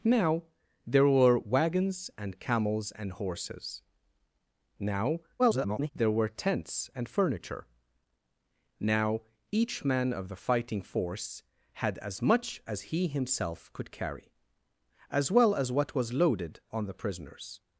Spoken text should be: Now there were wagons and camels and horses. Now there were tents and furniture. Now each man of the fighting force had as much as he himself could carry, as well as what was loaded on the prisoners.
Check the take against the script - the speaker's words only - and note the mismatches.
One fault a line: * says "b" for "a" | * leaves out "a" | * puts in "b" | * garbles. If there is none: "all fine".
* garbles